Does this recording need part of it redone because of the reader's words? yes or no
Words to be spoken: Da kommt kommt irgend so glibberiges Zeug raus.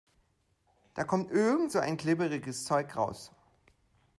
yes